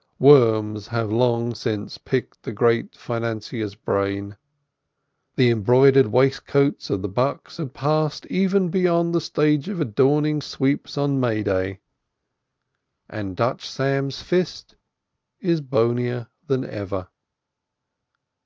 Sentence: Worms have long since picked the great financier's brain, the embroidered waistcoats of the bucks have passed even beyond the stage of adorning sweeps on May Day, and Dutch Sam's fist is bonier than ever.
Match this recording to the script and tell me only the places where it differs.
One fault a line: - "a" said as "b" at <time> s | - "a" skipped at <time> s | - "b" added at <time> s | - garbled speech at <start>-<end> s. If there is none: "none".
none